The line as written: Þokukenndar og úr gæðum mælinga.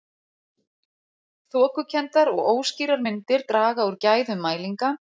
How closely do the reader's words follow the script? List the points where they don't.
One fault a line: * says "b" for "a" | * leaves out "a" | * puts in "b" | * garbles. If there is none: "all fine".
* puts in "óskýrar myndir draga"